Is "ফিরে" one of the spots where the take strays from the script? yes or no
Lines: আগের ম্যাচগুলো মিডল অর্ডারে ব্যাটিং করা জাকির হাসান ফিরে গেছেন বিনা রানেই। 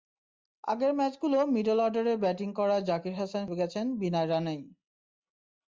yes